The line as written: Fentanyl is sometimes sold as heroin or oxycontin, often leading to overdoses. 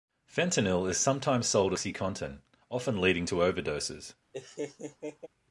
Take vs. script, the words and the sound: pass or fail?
fail